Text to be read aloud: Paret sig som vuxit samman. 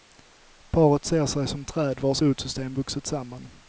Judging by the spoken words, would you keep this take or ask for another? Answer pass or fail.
fail